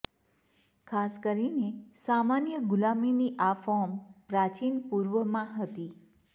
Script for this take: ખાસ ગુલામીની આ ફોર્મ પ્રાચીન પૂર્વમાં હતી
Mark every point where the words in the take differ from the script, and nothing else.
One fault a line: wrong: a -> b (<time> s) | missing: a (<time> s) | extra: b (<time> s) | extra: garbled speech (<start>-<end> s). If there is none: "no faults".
extra: કરીને સામાન્ય (1.2 s)